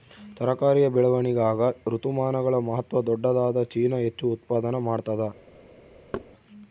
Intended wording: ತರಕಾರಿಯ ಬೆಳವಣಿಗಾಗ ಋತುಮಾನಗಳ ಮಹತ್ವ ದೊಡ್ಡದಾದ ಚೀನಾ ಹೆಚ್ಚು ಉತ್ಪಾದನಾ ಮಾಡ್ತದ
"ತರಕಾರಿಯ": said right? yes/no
yes